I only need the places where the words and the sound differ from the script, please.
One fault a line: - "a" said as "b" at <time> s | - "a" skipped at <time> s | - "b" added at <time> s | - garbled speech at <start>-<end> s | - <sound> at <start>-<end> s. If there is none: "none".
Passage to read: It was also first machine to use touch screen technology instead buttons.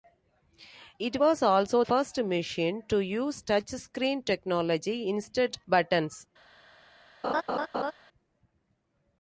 - laugh at 7.2-7.9 s